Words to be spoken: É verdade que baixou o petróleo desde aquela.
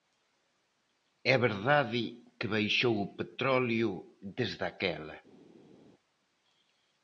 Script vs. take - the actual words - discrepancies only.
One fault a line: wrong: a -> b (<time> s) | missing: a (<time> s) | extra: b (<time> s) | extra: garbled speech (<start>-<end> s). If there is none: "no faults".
no faults